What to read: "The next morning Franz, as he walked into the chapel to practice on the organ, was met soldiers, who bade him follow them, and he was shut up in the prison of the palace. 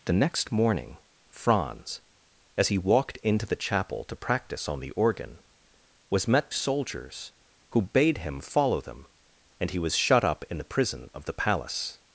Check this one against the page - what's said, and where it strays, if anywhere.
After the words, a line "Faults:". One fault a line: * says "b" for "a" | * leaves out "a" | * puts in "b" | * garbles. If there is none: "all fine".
"The next morning Franz, as he walked into the chapel to practice on the organ, was met soldiers, who bade him follow them, and he was shut up in the prison of the palace.
Faults:
all fine